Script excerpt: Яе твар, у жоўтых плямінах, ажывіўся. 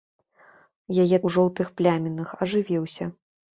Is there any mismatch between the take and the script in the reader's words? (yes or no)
yes